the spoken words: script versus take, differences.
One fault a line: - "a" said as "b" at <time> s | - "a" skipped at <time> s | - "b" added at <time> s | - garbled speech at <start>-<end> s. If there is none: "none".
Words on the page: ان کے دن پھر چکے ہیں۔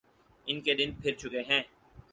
none